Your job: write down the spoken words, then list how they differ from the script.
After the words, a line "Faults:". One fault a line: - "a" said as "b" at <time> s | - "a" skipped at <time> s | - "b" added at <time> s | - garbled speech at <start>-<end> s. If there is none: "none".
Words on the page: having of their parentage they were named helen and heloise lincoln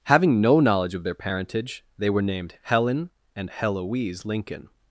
having no knowledge of their parentage they were named helen and heloise lincoln
Faults:
- "no knowledge" added at 0.4 s